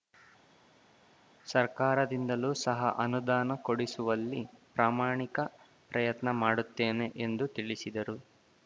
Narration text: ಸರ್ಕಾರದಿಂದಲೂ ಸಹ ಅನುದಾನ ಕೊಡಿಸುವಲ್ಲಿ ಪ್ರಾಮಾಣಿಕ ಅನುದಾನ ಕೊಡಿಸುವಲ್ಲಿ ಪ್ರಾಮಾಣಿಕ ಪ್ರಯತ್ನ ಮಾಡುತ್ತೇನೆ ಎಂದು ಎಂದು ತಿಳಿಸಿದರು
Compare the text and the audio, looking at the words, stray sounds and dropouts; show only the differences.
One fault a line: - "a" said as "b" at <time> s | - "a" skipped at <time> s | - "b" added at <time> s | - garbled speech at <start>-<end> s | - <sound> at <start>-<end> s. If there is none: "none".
- "ಅನುದಾನ ಕೊಡಿಸುವಲ್ಲಿ ಪ್ರಾಮಾಣಿಕ" skipped at 5.4 s
- "ಎಂದು" skipped at 7.5 s